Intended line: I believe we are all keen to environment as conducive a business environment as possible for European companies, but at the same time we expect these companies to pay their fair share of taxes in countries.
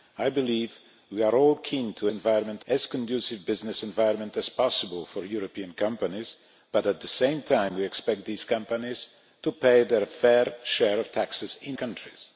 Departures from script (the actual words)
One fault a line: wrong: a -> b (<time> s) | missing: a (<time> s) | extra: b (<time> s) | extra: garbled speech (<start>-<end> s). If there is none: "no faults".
no faults